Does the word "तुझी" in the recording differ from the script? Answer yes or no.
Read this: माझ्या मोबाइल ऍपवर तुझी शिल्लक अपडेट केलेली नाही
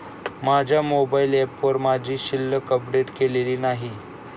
yes